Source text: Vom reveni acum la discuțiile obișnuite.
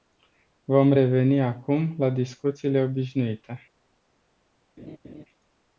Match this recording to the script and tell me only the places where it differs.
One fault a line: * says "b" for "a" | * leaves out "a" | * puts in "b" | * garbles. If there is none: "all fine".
all fine